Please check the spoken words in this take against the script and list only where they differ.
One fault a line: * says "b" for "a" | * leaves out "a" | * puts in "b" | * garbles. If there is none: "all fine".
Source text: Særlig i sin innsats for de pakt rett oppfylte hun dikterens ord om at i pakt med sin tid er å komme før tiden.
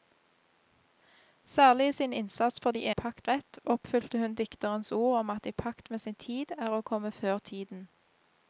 all fine